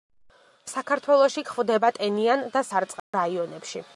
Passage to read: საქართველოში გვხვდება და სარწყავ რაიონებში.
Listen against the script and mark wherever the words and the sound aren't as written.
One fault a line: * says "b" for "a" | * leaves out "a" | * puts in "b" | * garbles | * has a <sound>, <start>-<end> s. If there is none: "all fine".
* puts in "ტენიან"
* has a dropout, 3.0-3.1 s